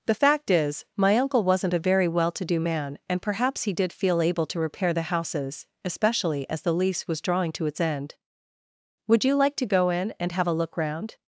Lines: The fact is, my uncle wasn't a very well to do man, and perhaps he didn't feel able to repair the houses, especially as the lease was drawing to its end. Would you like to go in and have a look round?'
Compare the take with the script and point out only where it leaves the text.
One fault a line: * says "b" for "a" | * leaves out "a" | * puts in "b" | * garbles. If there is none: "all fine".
* says "did" for "didn't"